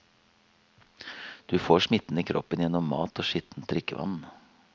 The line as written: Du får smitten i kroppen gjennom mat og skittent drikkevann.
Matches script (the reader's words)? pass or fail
pass